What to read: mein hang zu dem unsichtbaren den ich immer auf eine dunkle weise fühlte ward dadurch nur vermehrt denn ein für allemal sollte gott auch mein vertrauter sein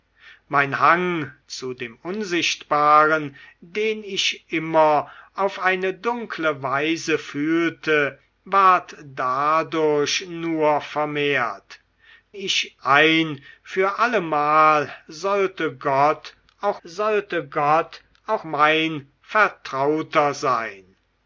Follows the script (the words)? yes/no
no